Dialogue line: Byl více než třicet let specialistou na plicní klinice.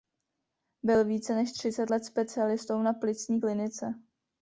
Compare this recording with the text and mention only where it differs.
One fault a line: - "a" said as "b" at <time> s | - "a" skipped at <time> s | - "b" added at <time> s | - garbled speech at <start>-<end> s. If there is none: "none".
none